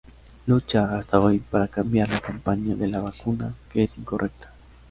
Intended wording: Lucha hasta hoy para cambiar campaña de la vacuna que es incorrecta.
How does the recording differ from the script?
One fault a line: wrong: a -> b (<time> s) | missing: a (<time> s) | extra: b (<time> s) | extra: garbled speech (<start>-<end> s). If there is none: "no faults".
extra: la (2.1 s)